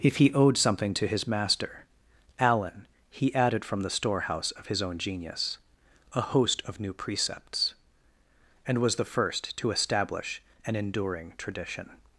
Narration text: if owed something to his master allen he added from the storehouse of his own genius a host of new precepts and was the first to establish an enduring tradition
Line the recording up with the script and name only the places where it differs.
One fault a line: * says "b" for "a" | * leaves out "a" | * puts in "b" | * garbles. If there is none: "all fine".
* puts in "he"